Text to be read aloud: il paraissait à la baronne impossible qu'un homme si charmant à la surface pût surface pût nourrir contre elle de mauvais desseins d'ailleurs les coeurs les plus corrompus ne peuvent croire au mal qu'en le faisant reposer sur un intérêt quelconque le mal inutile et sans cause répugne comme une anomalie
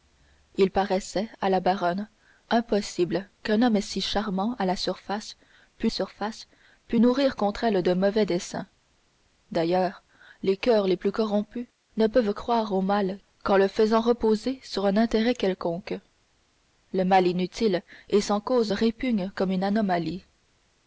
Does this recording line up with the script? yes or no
yes